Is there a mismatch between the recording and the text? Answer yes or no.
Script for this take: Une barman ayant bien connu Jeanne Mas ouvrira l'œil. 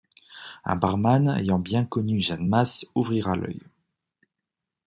yes